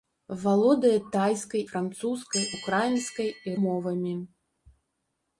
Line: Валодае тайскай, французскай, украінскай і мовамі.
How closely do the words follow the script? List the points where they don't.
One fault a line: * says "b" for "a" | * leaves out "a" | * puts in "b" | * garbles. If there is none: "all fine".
all fine